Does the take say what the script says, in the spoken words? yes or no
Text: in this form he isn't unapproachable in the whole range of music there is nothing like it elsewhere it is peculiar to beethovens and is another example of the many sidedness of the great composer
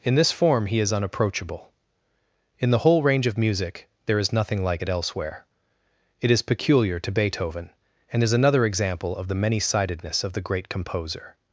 no